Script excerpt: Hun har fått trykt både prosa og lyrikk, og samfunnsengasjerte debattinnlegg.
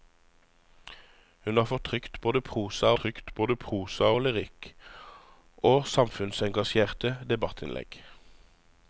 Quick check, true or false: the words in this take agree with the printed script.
false